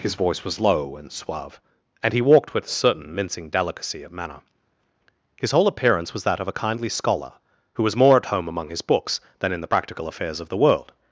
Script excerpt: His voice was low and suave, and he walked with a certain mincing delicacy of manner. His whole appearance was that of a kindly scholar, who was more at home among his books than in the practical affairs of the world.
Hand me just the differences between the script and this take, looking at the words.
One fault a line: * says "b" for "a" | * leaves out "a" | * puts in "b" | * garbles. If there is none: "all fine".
all fine